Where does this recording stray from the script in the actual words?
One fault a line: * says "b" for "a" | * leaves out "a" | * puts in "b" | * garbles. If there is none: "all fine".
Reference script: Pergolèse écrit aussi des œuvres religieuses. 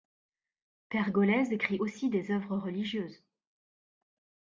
all fine